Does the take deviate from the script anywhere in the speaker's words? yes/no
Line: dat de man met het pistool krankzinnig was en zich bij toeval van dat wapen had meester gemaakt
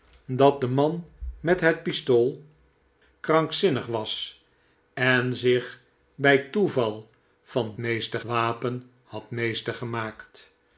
yes